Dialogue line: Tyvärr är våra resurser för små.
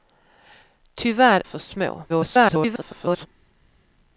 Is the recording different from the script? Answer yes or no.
yes